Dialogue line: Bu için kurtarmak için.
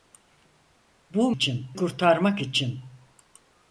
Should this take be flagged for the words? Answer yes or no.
no